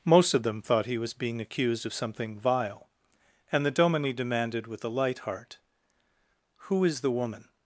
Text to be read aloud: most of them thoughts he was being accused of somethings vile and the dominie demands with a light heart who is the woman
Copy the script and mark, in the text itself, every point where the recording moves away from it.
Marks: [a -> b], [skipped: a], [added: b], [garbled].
most of them [thoughts -> thought] he was being accused of [somethings -> something] vile and the dominie [demands -> demanded] with a light heart who is the woman